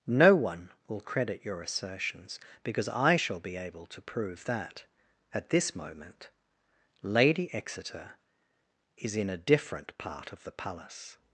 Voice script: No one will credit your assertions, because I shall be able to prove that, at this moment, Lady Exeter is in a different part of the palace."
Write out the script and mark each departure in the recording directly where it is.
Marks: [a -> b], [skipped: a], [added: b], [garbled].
No one will credit your assertions, because I shall be able to prove that, at this moment, Lady Exeter is in a different part of the palace."